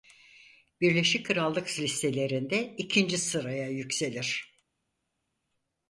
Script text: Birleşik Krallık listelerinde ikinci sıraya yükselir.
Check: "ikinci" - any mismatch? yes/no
no